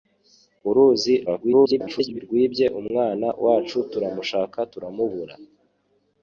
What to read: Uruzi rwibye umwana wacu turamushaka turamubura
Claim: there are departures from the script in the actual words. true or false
true